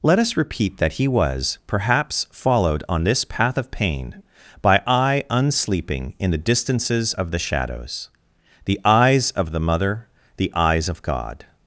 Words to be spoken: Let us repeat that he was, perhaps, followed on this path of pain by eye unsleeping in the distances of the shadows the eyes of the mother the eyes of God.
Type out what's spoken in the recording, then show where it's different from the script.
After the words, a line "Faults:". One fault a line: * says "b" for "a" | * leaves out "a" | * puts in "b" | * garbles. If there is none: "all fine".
Let us repeat that he was, perhaps, followed on this path of pain by eye unsleeping in the distances of the shadows the eyes of the mother the eyes of God.
Faults:
all fine